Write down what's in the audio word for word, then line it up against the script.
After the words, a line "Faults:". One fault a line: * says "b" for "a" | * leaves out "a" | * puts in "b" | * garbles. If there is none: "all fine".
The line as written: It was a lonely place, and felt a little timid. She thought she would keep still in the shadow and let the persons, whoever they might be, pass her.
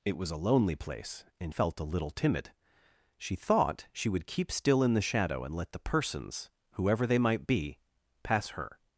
It was a lonely place, and felt a little timid. She thought she would keep still in the shadow and let the persons, whoever they might be, pass her.
Faults:
all fine